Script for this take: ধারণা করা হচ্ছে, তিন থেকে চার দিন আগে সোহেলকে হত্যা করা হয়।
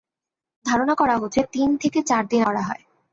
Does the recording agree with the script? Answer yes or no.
no